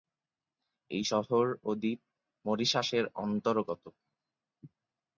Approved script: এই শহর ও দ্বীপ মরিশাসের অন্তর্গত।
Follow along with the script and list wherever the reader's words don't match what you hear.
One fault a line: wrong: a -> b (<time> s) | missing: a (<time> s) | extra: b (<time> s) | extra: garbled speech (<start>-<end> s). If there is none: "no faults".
no faults